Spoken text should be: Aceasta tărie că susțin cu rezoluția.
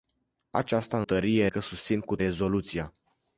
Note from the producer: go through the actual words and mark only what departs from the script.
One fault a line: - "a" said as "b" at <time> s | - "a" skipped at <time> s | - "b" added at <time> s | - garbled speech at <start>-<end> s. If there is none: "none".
none